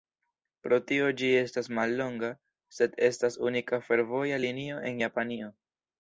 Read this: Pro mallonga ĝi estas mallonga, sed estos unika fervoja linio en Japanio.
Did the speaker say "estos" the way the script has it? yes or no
no